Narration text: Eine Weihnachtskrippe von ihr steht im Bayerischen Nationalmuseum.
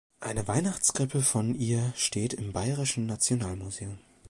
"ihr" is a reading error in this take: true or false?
false